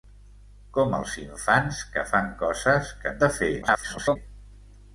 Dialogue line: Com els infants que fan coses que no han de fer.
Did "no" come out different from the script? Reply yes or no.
yes